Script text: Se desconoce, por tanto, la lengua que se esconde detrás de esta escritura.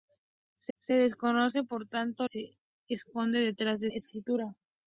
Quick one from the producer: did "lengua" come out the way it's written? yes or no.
no